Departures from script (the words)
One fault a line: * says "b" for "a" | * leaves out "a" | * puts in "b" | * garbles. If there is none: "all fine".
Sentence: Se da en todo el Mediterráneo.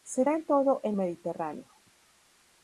all fine